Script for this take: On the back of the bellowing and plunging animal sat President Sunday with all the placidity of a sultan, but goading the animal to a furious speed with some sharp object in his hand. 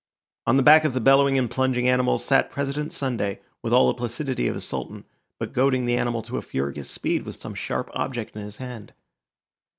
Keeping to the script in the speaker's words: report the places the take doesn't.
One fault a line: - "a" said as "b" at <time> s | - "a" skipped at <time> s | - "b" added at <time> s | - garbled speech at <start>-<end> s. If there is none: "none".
none